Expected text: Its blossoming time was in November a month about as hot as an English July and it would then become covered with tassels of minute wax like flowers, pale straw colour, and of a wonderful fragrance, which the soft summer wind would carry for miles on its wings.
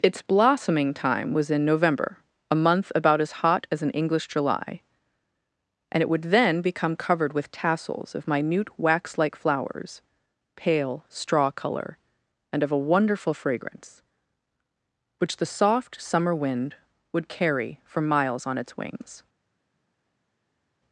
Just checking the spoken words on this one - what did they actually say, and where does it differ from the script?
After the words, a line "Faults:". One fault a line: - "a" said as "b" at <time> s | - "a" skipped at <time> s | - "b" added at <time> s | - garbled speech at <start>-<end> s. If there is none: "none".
Its blossoming time was in November a month about as hot as an English July and it would then become covered with tassels of minute wax like flowers, pale straw colour, and of a wonderful fragrance, which the soft summer wind would carry for miles on its wings.
Faults:
none